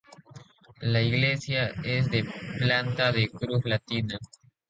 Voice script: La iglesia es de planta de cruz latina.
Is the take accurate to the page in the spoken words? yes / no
yes